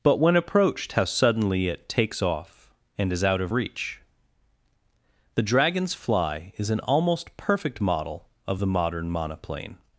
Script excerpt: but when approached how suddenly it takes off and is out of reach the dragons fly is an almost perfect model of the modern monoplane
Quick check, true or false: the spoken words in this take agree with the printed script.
true